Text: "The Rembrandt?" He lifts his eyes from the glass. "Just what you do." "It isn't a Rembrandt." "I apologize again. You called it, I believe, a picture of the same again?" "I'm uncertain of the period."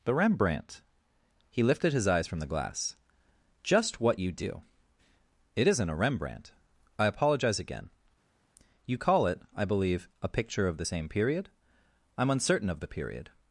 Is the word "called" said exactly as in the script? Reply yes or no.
no